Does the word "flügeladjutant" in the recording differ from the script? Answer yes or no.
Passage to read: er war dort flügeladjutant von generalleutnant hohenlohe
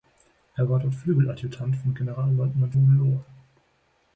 no